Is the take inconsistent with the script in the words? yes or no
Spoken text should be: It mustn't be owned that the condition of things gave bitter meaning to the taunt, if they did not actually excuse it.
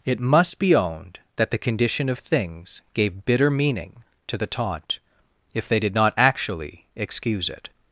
yes